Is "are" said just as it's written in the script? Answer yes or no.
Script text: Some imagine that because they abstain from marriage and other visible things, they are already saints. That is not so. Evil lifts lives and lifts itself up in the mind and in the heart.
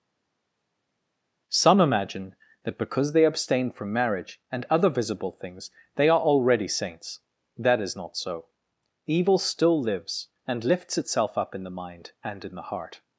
yes